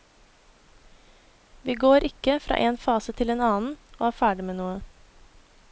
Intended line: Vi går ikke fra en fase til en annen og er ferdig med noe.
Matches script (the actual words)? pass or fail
pass